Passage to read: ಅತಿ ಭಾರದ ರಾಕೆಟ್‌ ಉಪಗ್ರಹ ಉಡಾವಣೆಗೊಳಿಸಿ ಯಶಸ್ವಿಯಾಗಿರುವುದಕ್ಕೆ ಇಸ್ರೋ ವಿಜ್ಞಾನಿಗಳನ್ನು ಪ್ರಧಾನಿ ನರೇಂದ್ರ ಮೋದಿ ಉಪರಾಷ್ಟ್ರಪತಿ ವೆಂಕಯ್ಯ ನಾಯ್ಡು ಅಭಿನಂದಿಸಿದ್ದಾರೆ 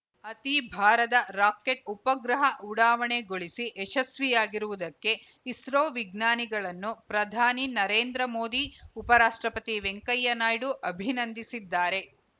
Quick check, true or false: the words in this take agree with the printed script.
true